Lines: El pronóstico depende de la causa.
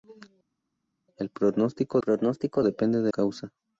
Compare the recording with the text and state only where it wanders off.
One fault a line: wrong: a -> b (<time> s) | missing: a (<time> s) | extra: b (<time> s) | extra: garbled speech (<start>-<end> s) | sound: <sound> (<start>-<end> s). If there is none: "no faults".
extra: pronóstico (2.0 s)
missing: la (3.1 s)